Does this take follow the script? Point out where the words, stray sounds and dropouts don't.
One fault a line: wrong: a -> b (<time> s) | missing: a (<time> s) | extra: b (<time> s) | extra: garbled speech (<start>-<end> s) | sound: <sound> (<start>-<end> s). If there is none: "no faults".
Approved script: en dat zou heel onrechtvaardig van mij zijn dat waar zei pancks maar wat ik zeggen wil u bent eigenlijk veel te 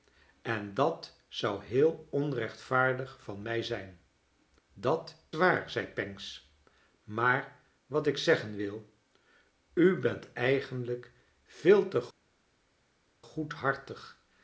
no faults